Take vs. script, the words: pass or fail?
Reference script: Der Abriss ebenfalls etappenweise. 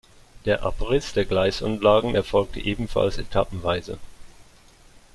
fail